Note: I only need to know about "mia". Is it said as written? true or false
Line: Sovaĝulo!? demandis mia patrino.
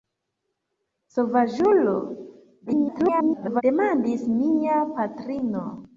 true